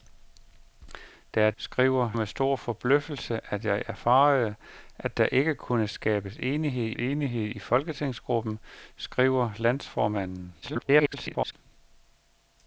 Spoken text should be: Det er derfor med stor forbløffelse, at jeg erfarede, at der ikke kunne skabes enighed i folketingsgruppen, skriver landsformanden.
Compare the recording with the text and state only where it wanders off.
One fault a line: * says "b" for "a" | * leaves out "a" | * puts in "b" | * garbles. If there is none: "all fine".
* says "skriver" for "derfor"
* puts in "enighed"
* garbles